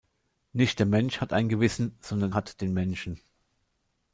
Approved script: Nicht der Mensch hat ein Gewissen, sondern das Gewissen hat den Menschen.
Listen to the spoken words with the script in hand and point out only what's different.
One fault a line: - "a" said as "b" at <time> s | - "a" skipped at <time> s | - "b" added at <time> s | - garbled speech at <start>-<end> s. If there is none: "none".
- "das Gewissen" skipped at 2.3 s